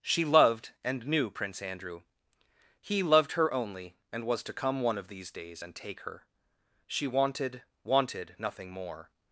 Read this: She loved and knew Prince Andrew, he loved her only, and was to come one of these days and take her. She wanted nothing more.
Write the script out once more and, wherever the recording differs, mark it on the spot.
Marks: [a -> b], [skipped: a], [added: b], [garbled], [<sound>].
She loved and knew Prince Andrew, he loved her only, and was to come one of these days and take her. She wanted [added: wanted] nothing more.